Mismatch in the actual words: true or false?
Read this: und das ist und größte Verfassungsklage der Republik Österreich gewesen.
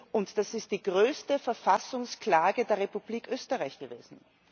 true